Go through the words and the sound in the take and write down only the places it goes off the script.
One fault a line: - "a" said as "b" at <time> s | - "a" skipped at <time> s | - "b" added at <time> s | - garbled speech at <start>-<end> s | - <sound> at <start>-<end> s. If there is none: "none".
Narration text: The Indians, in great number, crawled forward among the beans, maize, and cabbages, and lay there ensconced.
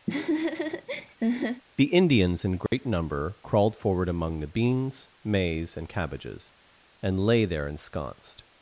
- laugh at 0.1-1.6 s
- dropout at 2.7-2.7 s